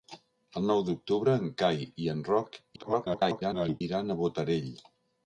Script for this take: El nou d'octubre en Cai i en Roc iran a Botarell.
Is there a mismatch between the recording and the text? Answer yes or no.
yes